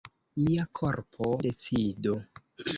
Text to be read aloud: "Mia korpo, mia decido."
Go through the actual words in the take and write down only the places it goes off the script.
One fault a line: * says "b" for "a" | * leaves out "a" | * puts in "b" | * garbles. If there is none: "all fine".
* leaves out "mia"